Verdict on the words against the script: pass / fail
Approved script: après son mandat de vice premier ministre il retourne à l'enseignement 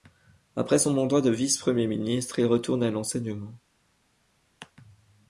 pass